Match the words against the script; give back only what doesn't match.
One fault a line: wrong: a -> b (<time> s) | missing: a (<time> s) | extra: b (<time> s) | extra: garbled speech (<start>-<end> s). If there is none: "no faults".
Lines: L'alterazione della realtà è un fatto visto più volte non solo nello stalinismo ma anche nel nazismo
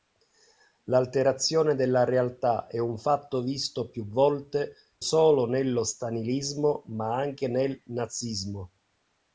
missing: non (4.7 s)